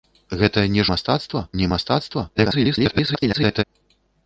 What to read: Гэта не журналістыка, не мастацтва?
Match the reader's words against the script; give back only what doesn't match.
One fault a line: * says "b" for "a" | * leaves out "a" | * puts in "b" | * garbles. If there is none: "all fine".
* says "мастацтва" for "журналістыка"
* garbles